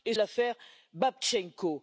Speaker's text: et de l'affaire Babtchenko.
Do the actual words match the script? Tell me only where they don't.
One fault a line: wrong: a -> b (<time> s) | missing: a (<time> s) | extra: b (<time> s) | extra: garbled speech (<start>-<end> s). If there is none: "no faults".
no faults